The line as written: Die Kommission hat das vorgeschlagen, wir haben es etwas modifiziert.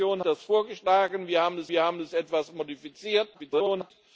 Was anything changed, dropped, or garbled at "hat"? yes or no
yes